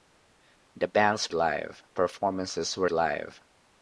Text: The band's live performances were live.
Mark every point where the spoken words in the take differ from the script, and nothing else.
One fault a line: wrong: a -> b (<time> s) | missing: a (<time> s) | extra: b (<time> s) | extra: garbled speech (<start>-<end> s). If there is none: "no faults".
no faults